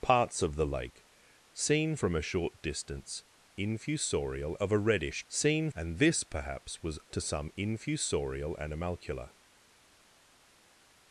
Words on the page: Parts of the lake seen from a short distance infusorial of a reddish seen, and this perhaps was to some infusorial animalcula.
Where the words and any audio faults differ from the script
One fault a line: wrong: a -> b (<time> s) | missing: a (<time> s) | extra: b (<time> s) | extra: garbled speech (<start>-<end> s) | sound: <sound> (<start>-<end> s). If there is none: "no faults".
no faults